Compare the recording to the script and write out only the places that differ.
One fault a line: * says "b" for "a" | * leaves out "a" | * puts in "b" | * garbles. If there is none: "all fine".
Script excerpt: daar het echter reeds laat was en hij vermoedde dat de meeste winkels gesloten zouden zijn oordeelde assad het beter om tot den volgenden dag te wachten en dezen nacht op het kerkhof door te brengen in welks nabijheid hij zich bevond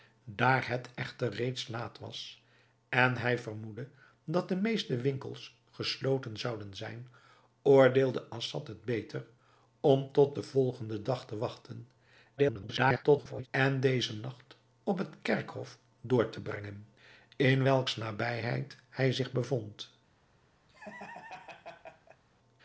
* garbles